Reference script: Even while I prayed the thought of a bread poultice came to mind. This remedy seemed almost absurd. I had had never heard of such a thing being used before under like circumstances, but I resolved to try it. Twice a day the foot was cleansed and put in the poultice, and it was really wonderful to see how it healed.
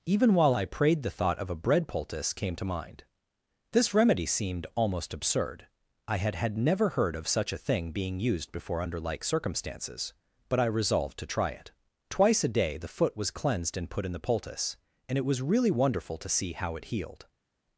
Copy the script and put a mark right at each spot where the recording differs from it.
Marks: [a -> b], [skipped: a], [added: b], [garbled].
Even while I prayed the thought of a bread poultice came to mind. This remedy seemed almost absurd. I had had never heard of such a thing being used before under like circumstances, but I resolved to try it. Twice a day the foot was cleansed and put in the poultice, and it was really wonderful to see how it healed.